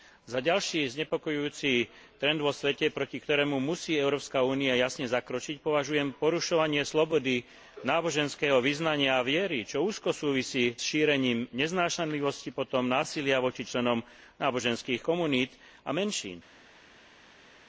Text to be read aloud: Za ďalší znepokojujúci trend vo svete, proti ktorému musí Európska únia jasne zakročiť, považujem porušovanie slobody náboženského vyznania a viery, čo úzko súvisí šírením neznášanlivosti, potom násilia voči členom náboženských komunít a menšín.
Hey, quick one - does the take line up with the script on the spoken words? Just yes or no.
yes